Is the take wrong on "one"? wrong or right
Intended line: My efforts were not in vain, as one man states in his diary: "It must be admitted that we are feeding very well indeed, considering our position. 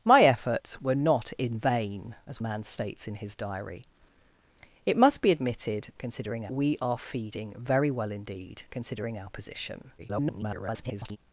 wrong